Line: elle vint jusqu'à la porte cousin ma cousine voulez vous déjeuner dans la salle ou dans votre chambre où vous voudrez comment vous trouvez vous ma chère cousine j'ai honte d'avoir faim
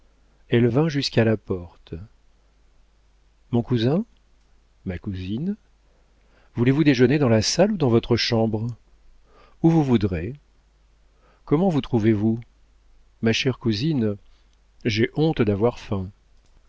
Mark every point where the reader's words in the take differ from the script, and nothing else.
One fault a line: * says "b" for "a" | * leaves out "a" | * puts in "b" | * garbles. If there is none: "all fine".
* puts in "mon"